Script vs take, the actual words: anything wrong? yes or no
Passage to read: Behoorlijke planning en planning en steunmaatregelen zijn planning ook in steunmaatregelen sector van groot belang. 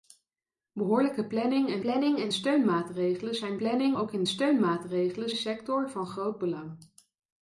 no